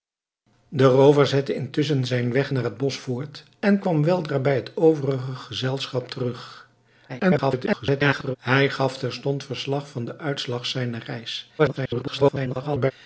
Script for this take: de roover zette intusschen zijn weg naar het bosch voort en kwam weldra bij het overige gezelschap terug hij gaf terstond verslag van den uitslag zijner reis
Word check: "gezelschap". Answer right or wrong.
right